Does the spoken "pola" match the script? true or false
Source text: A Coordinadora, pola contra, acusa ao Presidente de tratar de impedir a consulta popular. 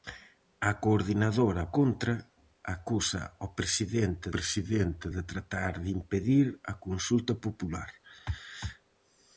false